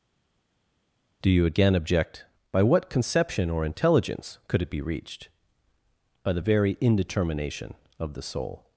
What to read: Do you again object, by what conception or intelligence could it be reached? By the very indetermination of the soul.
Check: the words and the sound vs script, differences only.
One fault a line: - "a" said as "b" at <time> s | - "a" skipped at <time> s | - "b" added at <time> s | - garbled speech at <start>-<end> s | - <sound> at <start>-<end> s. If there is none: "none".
none